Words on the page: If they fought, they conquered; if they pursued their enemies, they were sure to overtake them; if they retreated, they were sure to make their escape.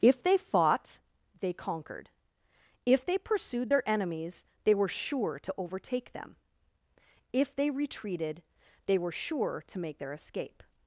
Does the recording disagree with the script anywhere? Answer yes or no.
no